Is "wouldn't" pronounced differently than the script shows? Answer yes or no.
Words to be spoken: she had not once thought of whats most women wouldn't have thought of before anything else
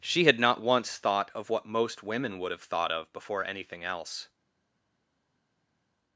yes